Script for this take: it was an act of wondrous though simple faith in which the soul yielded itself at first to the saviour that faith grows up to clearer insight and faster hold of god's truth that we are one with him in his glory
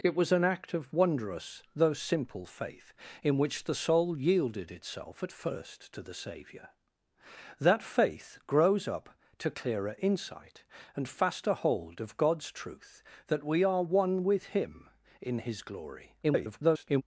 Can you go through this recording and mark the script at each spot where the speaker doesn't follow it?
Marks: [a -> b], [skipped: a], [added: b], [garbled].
it was an act of wondrous though simple faith in which the soul yielded itself at first to the saviour that faith grows up to clearer insight and faster hold of god's truth that we are one with him in his glory [garbled]